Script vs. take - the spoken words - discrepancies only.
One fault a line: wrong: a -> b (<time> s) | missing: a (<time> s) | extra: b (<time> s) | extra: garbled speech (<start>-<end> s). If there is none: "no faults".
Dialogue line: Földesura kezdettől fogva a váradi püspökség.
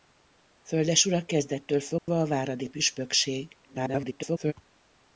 extra: garbled speech (3.6-4.5 s)